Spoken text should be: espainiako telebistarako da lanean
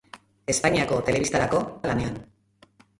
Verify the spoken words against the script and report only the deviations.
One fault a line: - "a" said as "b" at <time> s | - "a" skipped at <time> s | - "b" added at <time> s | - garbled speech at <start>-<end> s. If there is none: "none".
none